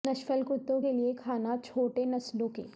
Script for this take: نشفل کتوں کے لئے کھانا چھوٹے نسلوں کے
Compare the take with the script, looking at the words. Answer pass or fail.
pass